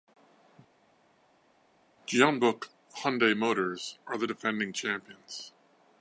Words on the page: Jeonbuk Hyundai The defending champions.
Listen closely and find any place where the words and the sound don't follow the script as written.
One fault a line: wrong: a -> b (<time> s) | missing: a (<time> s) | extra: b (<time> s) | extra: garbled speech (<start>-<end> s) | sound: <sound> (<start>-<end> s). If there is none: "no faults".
extra: Motors are (3.4 s)